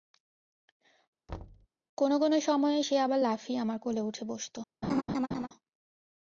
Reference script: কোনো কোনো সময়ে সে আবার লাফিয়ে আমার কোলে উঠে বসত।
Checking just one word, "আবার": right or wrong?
right